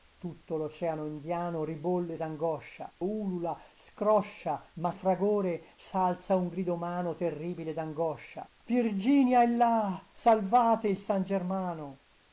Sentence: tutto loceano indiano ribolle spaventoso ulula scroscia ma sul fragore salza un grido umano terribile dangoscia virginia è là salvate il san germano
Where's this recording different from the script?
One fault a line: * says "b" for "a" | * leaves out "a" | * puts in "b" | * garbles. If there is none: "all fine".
* says "dangoscia" for "spaventoso"
* leaves out "sul"